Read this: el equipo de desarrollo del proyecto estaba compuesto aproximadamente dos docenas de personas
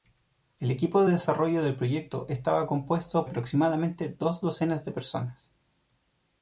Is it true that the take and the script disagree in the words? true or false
false